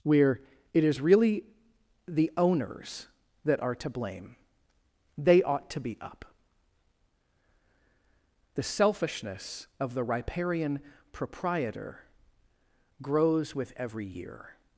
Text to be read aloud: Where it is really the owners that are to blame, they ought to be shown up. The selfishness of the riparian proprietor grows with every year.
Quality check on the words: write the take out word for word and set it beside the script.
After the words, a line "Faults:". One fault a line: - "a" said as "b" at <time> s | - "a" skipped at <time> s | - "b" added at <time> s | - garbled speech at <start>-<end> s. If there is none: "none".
Where it is really the owners that are to blame, they ought to be up. The selfishness of the riparian proprietor grows with every year.
Faults:
- "shown" skipped at 6.0 s